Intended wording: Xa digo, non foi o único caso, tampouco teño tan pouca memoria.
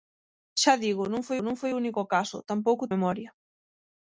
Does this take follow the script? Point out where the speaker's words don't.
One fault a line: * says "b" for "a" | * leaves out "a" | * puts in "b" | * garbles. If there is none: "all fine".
* puts in "non foi"
* leaves out "teño tan pouca"